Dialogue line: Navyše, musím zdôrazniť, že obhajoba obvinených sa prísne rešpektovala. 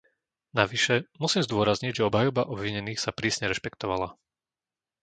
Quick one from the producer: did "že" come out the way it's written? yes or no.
yes